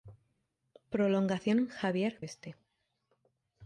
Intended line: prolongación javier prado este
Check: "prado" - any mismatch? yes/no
yes